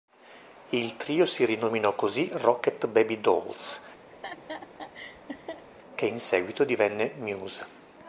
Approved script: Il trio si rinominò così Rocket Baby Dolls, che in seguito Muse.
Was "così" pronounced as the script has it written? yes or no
yes